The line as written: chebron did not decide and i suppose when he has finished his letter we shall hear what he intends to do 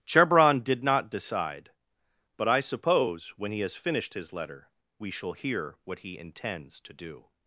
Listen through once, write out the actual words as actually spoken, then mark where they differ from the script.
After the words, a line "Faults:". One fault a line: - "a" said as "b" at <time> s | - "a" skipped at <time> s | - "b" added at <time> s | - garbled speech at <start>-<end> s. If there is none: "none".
chebron did not decide but i suppose when he has finished his letter we shall hear what he intends to do
Faults:
- "and" said as "but" at 2.4 s